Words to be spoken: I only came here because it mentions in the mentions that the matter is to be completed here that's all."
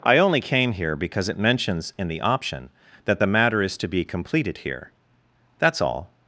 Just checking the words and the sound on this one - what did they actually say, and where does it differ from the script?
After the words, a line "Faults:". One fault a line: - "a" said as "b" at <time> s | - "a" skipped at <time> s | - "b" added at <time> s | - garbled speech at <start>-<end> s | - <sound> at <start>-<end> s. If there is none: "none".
I only came here because it mentions in the option that the matter is to be completed here that's all."
Faults:
- "mentions" said as "option" at 2.2 s